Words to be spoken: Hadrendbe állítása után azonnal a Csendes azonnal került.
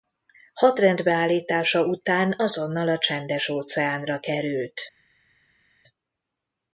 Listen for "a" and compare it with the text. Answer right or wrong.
right